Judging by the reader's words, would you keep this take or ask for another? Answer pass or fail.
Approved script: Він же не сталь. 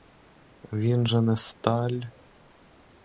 pass